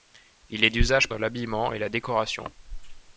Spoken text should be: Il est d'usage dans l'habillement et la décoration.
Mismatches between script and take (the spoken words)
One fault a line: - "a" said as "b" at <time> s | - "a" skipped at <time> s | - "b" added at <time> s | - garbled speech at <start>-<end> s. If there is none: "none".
none